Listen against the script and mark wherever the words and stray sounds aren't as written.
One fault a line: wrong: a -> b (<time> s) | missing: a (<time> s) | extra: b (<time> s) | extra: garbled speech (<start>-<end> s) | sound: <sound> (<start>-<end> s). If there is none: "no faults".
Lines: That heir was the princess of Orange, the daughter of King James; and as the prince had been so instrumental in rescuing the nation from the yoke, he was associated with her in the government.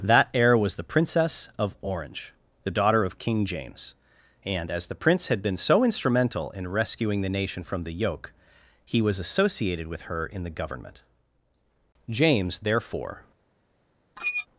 extra: James therefore (12.1 s)
sound: squeak (14.2-14.5 s)